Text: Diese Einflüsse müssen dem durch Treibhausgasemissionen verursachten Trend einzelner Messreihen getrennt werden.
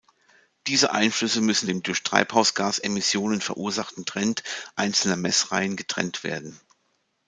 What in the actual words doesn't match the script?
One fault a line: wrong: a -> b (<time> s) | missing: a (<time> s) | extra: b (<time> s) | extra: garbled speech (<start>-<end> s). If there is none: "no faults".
no faults